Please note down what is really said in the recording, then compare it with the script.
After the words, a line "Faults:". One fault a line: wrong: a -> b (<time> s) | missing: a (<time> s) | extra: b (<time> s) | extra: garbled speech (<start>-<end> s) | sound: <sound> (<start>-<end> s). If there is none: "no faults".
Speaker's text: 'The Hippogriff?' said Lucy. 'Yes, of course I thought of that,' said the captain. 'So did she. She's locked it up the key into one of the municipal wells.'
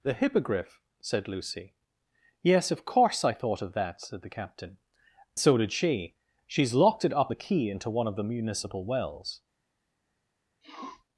'The Hippogriff?' said Lucy. 'Yes, of course I thought of that,' said the captain. 'So did she. She's locked it up the key into one of the municipal wells.'
Faults:
sound: sniff (10.6-11.0 s)